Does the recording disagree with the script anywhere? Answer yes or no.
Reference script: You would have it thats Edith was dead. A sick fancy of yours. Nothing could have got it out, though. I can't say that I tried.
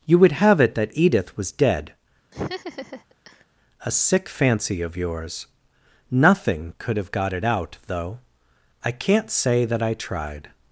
yes